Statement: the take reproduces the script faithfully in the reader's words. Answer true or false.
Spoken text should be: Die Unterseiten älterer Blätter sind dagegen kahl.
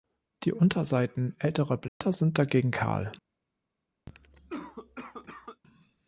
true